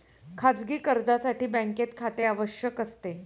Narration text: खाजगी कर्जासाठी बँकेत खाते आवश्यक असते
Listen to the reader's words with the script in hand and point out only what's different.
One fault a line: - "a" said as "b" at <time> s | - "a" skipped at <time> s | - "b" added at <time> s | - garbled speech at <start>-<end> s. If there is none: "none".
none